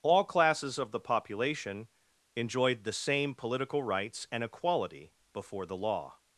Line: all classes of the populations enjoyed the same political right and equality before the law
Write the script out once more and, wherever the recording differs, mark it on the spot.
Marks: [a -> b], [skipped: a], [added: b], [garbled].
all classes of the [populations -> population] enjoyed the same political [right -> rights] and equality before the law